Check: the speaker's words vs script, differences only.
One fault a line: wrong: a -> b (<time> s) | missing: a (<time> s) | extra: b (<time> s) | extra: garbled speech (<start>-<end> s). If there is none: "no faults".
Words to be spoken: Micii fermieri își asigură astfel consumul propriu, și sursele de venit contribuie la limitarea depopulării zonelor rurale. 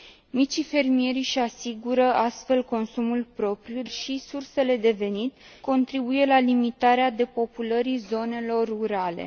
no faults